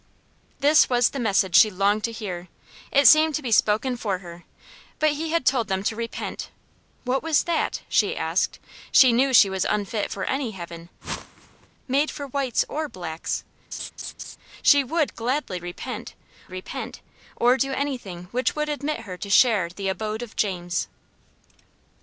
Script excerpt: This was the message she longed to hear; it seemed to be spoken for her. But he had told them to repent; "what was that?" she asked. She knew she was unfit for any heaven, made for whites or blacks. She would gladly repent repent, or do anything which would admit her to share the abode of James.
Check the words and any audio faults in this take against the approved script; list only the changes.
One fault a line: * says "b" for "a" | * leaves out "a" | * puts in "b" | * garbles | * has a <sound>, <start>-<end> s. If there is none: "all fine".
* has a whoosh, 11.0-11.7 s
* has a laugh, 13.7-14.4 s